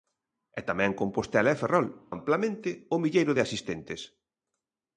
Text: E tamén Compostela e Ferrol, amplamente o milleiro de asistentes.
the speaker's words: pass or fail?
pass